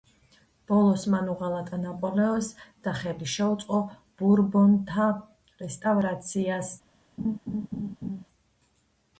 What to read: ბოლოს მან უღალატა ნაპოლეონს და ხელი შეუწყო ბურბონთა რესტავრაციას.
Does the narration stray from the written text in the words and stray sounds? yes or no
yes